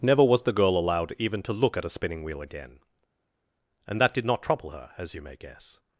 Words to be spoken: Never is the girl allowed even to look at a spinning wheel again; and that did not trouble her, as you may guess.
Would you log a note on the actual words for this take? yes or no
yes